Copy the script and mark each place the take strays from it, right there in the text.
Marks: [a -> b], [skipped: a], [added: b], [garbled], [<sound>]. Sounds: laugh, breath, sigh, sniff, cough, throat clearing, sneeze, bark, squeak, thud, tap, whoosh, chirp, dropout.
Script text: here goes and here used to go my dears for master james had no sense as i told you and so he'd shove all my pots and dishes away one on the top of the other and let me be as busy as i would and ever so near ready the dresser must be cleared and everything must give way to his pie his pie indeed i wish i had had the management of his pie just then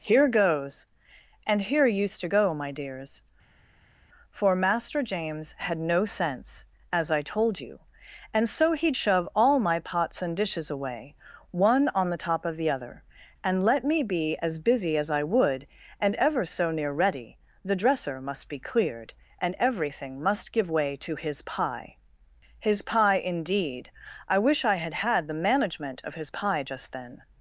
here goes and here used to go my dears for master james had no sense as i told you and so he'd shove all my pots and dishes away one on the top of the other and let me be as busy as i would and ever so near ready the dresser must be cleared and everything must give way to his pie his pie indeed i wish i had had the management of his pie just then